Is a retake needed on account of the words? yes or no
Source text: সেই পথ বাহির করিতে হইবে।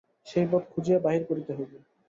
yes